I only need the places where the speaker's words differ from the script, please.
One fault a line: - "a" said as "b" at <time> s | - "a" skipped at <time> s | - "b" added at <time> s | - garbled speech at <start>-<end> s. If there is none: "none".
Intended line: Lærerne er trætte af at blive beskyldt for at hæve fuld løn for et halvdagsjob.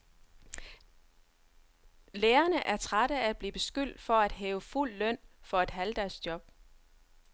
none